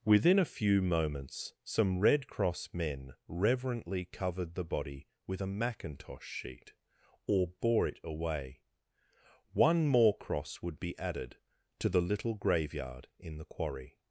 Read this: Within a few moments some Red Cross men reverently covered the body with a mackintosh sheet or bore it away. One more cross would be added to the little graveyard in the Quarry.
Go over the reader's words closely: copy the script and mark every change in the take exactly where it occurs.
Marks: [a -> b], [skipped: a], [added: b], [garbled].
Within a few moments some Red Cross men reverently covered the body with a mackintosh sheet or bore it away. One more cross would be added to the little graveyard in the Quarry.